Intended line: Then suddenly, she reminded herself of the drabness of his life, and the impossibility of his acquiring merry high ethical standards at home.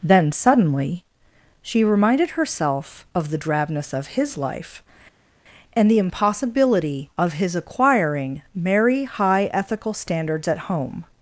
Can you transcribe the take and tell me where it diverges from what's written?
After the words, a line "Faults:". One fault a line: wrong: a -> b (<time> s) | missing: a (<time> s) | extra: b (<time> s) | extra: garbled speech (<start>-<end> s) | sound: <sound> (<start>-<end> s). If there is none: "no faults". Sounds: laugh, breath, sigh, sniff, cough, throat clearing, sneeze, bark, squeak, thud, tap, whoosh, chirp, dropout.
Then suddenly, she reminded herself of the drabness of his life, and the impossibility of his acquiring merry high ethical standards at home.
Faults:
no faults